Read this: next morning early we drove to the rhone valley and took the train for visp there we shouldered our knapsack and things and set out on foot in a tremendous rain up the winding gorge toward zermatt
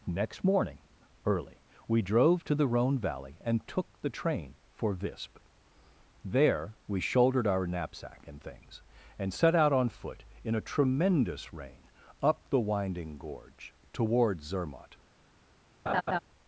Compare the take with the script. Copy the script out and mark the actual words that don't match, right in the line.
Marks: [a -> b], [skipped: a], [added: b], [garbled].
next morning early we drove to the rhone valley and took the train for visp there we shouldered our knapsack and things and set out on foot in a tremendous rain up the winding gorge toward zermatt